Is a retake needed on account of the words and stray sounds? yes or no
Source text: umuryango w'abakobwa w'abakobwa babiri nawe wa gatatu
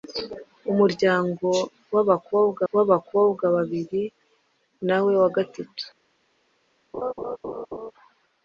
yes